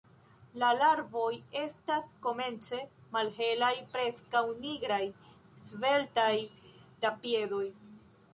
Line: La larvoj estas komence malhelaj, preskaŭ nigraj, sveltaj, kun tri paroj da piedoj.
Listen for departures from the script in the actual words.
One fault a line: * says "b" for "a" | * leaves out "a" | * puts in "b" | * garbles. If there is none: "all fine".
* leaves out "kun tri paroj"